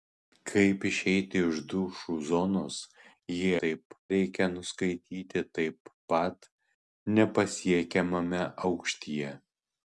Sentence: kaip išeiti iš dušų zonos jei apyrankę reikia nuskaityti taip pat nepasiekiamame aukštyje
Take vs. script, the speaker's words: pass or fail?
fail